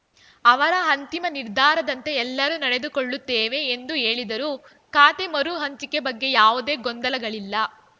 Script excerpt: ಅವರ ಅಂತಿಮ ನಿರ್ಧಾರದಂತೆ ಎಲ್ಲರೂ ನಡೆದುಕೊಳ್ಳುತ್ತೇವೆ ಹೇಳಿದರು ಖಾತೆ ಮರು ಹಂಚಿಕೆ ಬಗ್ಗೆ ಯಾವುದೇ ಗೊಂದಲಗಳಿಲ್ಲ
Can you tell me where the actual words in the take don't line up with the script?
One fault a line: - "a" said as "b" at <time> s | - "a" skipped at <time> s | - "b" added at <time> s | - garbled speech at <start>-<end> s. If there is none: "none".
- "ಎಂದು" added at 3.8 s